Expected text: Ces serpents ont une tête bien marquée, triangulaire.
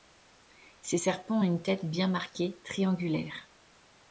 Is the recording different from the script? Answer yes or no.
no